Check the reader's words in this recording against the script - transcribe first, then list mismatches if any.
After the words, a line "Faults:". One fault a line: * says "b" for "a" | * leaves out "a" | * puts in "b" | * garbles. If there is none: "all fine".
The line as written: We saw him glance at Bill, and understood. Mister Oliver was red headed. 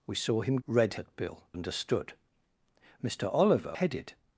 We saw him red at Bill, understood. Mister Oliver headed.
Faults:
* says "red" for "glance"
* leaves out "and"
* leaves out "was red"